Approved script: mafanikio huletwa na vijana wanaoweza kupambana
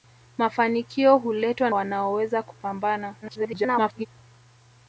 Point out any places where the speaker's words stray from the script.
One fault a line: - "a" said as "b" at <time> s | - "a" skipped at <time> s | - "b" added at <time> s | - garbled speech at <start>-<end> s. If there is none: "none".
- "na vijana" skipped at 1.7 s
- garbled speech at 3.2-4.1 s